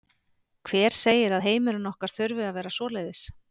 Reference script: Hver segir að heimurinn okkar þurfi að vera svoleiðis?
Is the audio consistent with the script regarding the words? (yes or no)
yes